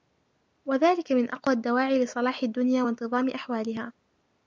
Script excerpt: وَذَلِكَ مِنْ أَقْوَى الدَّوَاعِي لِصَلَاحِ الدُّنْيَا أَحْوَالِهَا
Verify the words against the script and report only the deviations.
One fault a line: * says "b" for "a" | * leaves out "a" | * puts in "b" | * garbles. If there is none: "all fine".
* puts in "وَانْتِظَامِ"